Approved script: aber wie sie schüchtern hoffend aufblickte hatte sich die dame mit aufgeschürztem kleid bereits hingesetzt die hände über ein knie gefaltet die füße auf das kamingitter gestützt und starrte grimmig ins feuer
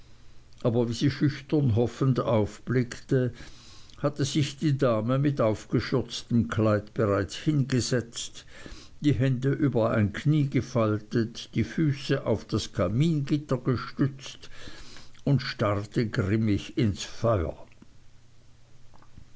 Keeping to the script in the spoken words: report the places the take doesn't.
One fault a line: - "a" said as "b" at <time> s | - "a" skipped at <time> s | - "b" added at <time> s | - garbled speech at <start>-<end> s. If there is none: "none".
none